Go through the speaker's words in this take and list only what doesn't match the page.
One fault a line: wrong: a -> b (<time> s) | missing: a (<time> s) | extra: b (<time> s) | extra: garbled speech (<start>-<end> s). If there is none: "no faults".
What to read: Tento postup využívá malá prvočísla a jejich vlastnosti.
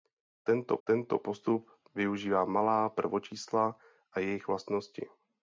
extra: tento (0.8 s)